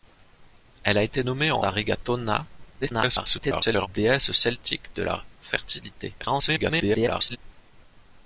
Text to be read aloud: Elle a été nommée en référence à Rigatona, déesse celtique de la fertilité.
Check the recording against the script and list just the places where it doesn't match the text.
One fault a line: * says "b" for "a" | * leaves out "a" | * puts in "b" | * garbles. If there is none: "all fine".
* leaves out "référence"
* garbles
* garbles